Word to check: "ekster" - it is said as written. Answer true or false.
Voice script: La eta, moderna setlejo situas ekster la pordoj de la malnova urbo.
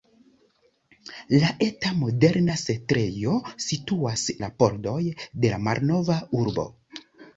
false